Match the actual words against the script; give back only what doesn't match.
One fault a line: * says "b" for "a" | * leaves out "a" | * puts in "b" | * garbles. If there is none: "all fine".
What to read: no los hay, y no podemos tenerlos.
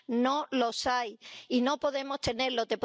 all fine